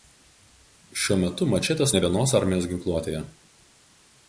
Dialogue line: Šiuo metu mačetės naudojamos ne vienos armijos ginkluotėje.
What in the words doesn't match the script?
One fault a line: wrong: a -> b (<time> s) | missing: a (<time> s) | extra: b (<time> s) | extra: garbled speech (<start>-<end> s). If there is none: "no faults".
missing: naudojamos (1.9 s)